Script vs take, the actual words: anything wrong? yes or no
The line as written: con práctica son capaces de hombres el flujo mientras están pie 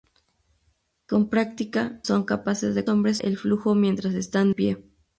no